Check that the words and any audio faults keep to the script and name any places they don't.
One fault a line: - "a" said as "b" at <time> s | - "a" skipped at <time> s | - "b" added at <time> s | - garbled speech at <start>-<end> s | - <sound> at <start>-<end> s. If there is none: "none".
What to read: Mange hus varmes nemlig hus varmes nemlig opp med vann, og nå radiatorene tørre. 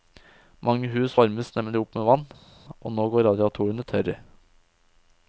- "hus varmes nemlig" skipped at 1.8 s
- "går" added at 3.2 s